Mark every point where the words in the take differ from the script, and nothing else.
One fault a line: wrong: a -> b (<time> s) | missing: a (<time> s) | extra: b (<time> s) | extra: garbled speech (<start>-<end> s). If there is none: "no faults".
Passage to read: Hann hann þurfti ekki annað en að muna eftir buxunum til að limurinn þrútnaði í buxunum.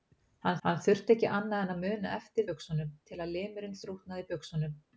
no faults